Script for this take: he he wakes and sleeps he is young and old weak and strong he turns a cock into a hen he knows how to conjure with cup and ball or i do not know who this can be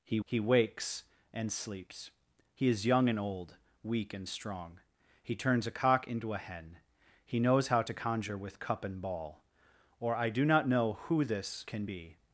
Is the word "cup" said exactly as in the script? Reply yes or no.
yes